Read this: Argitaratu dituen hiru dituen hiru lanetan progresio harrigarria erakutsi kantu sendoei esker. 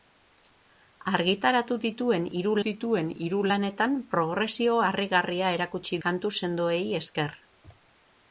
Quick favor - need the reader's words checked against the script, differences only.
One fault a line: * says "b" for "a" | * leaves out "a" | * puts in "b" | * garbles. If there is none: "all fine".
all fine